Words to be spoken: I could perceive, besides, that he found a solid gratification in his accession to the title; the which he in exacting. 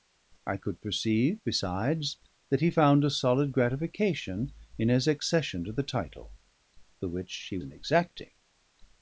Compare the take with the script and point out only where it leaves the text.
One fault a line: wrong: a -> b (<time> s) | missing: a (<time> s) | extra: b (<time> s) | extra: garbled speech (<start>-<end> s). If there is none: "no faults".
no faults